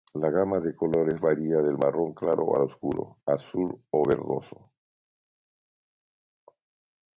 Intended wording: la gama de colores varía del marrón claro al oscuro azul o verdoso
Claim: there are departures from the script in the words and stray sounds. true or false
false